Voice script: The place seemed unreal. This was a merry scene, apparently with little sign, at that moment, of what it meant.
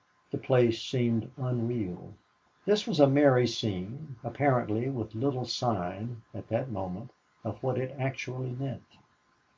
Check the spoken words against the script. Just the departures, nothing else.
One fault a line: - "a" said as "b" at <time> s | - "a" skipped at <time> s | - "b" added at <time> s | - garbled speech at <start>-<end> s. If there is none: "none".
- "actually" added at 8.0 s